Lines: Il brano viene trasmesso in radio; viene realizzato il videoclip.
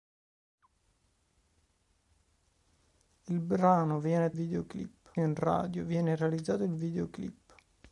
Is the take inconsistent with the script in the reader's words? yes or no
yes